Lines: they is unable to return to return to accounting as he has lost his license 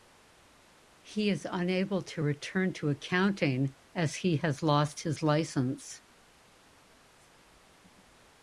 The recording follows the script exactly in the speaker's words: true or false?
false